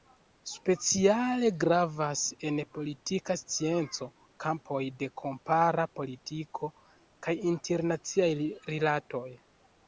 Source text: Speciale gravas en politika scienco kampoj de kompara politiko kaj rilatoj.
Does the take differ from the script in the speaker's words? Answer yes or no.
yes